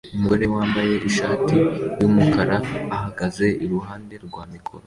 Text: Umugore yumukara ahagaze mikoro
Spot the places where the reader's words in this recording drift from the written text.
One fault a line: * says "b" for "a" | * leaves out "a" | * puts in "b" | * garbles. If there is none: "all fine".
* puts in "wambaye ishati"
* puts in "iruhande rwa"